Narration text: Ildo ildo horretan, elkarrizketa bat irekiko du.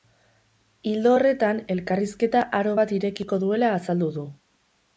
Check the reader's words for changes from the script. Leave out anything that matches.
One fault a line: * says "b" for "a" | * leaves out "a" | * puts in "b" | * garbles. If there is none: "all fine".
* leaves out "ildo"
* puts in "aro"
* puts in "duela azaldu"